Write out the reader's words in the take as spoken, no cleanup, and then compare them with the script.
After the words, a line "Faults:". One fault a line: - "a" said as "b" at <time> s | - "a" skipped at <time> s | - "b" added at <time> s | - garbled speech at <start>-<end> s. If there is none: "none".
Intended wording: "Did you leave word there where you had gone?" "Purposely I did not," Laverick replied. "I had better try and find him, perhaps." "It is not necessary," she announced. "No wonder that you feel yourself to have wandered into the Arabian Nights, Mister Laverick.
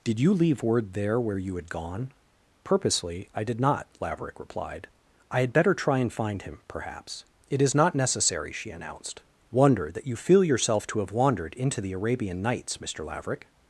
"Did you leave word there where you had gone?" "Purposely I did not," Laverick replied. "I had better try and find him, perhaps." "It is not necessary," she announced. "wonder that you feel yourself to have wandered into the Arabian Nights, Mister Laverick.
Faults:
- "No" skipped at 9.2 s